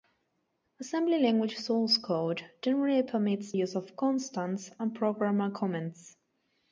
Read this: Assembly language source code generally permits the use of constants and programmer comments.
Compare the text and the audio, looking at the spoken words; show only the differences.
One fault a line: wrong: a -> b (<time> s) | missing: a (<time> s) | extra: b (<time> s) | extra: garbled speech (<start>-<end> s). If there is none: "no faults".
missing: the (3.5 s)